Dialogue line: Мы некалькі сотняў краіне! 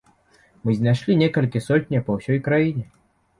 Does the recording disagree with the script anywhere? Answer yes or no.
yes